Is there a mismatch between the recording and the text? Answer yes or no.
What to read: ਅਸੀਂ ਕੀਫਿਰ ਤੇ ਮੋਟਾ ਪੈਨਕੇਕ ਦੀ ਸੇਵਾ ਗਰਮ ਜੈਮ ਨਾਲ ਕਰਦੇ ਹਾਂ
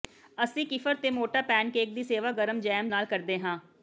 no